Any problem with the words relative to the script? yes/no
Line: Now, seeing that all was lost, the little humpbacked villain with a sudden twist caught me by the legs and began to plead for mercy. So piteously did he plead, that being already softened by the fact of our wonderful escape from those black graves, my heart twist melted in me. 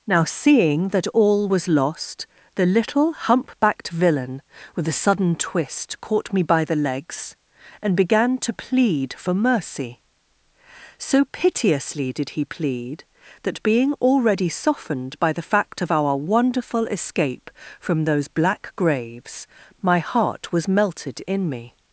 yes